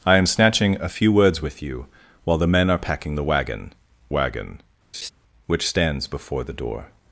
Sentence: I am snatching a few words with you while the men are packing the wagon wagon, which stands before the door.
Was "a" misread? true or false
false